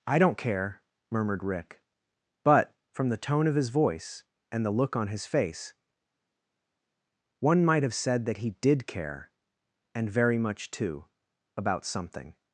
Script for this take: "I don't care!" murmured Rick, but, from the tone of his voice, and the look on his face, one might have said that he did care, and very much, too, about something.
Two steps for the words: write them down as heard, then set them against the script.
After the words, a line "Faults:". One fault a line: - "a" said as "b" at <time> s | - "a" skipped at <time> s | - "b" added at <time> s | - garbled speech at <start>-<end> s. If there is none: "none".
"I don't care!" murmured Rick, but, from the tone of his voice, and the look on his face, one might have said that he did care, and very much, too, about something.
Faults:
none